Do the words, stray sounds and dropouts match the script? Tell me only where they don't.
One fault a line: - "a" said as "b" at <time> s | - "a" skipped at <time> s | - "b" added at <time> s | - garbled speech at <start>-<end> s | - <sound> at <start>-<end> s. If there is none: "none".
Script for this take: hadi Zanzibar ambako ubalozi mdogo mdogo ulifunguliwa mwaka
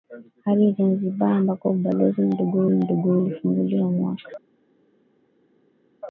none